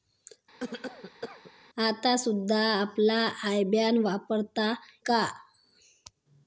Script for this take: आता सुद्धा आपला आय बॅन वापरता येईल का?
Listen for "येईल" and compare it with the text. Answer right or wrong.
wrong